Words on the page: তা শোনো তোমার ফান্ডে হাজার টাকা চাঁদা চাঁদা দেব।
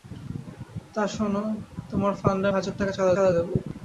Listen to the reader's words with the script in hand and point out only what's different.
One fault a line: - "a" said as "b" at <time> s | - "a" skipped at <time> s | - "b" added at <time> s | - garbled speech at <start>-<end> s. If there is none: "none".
none